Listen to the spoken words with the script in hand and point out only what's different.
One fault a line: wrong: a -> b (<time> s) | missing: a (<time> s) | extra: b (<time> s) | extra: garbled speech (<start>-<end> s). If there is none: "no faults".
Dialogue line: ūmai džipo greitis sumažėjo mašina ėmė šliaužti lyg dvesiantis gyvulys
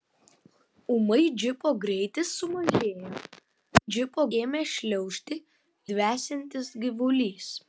wrong: mašina -> džipo (3.9 s)
missing: lyg (5.4 s)